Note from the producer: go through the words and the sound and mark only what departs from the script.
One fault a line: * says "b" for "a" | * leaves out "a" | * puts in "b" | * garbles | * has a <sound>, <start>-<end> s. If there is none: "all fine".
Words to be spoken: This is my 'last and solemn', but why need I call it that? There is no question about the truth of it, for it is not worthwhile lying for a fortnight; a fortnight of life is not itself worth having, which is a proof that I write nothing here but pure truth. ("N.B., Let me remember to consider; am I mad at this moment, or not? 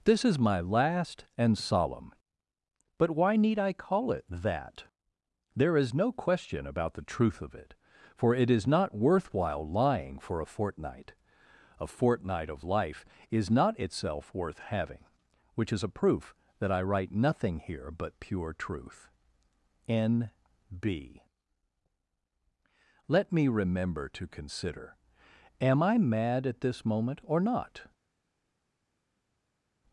all fine